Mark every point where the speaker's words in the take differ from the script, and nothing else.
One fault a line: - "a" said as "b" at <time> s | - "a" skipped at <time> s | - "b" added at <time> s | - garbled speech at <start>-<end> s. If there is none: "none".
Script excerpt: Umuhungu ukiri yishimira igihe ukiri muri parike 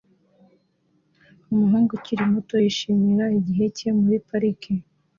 - "muto" added at 2.3 s
- "ukiri" said as "cye" at 3.8 s